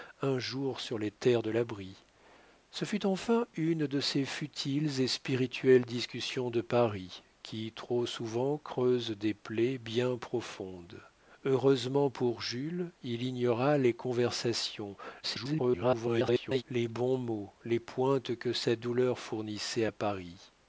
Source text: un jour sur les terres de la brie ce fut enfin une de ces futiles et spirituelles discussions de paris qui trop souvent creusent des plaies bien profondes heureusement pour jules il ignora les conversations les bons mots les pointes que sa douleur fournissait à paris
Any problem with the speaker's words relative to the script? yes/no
yes